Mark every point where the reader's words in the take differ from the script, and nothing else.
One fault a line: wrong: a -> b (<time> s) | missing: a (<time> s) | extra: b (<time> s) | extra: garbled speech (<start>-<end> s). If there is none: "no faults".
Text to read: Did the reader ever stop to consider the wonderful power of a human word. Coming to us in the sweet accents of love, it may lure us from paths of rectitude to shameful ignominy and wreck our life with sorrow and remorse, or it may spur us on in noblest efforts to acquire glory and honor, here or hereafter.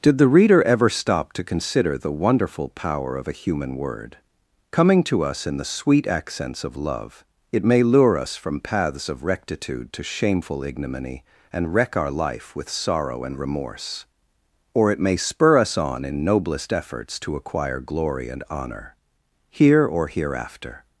no faults